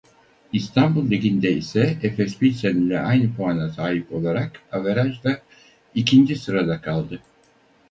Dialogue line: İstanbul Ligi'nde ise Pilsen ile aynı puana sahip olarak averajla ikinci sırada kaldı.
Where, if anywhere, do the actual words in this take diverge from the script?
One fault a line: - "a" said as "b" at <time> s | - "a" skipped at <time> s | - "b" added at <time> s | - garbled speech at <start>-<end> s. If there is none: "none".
- "Efes" added at 2.0 s